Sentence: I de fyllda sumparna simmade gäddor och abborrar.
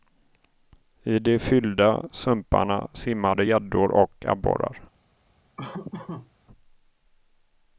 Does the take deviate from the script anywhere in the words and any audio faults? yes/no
yes